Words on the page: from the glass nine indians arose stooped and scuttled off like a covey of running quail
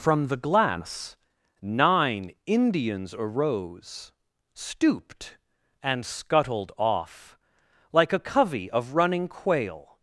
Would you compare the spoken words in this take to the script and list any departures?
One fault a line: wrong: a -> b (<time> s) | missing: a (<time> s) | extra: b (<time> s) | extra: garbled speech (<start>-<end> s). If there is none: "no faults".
no faults